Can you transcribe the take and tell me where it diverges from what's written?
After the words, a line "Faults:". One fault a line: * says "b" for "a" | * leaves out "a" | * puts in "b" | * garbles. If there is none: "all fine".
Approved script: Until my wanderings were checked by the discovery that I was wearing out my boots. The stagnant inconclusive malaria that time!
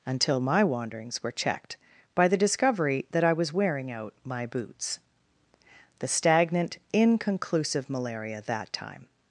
Until my wanderings were checked by the discovery that I was wearing out my boots. The stagnant inconclusive malaria that time!
Faults:
all fine